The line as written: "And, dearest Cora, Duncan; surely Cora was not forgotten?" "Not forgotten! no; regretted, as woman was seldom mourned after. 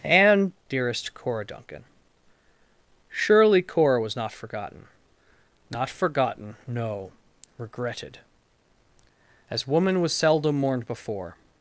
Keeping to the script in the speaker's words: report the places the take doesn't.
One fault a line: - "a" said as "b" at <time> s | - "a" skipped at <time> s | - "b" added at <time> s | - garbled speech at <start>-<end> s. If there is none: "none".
- "after" said as "before" at 10.9 s